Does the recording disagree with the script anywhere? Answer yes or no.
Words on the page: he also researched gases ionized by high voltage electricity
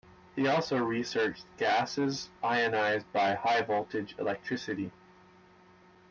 no